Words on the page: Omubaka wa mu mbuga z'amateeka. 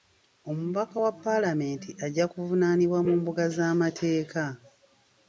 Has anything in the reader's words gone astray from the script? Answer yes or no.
yes